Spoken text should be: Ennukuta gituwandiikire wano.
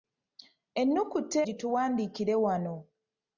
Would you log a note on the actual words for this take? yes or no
no